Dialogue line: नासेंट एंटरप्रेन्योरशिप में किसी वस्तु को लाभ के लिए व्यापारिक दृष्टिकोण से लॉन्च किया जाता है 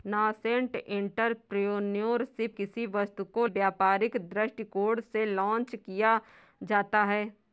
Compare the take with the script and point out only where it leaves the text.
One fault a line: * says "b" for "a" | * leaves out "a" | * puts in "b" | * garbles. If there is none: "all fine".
* leaves out "में"
* leaves out "लाभ के लिए"